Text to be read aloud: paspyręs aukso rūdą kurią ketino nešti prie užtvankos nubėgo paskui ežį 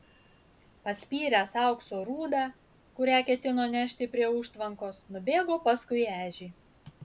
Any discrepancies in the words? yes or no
no